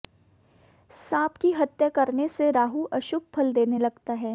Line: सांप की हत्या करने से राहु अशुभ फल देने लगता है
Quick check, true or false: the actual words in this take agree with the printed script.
true